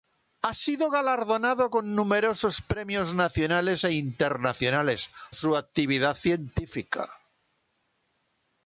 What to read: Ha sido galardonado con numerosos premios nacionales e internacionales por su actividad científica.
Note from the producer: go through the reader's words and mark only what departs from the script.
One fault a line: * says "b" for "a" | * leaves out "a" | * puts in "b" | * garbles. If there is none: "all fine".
* leaves out "por"